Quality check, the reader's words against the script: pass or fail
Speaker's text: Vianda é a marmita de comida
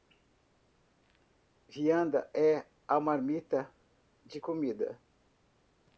pass